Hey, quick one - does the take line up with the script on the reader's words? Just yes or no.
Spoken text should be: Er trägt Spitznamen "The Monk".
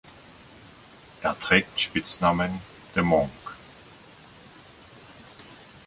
yes